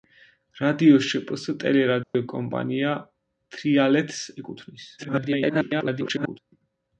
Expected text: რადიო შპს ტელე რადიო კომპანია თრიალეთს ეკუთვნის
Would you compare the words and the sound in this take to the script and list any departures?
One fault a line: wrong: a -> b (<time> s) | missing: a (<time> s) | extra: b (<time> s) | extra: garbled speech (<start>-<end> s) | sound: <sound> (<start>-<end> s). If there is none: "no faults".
sound: dropout (2.0-2.1 s)
extra: garbled speech (5.0-6.4 s)